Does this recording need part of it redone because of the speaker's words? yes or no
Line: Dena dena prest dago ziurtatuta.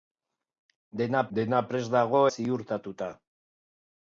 no